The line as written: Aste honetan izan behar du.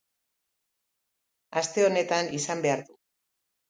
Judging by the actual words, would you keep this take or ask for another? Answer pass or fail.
pass